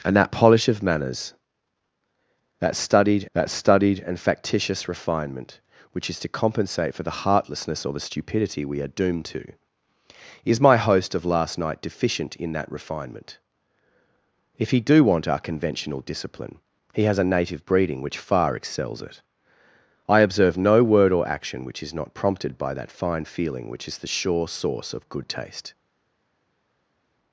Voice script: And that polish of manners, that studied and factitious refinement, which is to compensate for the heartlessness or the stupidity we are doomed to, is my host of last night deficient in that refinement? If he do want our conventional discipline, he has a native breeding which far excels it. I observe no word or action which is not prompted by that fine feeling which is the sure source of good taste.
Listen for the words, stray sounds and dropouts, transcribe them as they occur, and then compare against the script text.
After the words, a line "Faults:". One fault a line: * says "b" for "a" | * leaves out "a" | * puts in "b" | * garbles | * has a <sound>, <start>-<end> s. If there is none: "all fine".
And that polish of manners, that studied that studied and factitious refinement, which is to compensate for the heartlessness or the stupidity we are doomed to, is my host of last night deficient in that refinement? If he do want our conventional discipline, he has a native breeding which far excels it. I observe no word or action which is not prompted by that fine feeling which is the sure source of good taste.
Faults:
* puts in "that studied"